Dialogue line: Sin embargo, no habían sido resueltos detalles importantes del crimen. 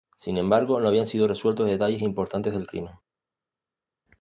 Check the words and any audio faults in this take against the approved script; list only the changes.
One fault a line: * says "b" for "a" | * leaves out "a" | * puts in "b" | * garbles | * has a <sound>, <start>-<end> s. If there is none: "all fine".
all fine